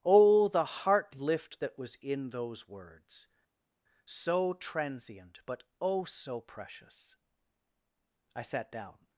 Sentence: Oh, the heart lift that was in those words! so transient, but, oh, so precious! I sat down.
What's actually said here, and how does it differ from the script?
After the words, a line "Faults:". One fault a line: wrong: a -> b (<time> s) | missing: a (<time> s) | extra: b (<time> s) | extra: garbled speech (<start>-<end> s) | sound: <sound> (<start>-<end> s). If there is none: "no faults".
Oh, the heart lift that was in those words! so transient, but, oh, so precious! I sat down.
Faults:
no faults